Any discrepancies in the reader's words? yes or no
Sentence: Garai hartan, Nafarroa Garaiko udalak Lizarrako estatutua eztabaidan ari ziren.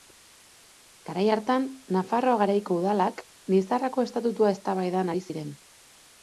no